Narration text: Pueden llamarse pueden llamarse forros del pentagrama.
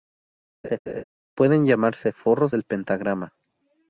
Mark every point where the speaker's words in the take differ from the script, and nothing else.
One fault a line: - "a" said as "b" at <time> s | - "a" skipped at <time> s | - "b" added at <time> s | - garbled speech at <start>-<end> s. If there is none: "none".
- "pueden llamarse" skipped at 2.1 s